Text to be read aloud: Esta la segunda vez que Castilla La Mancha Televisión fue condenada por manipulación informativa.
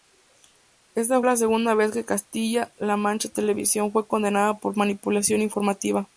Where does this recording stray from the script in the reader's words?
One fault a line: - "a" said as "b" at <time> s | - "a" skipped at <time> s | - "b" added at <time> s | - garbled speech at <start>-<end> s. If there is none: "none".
none